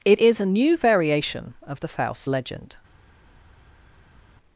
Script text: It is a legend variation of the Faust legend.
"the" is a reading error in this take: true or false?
false